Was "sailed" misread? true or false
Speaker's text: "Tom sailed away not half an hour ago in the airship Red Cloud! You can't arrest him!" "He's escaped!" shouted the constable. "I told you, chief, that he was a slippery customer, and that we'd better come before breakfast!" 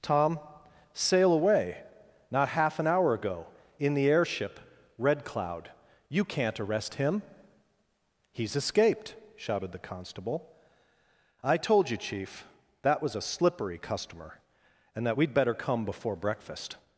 true